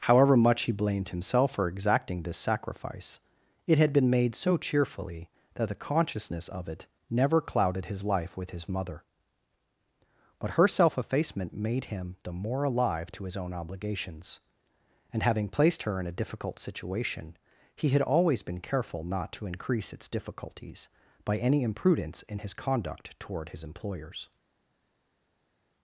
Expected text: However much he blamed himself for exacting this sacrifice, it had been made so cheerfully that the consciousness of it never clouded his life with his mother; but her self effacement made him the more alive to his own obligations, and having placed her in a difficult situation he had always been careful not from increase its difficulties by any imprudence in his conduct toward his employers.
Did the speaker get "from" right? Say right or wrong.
wrong